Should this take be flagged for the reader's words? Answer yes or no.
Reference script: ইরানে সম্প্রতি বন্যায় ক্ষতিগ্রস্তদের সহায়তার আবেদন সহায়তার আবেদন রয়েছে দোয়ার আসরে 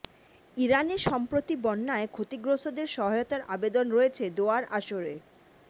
yes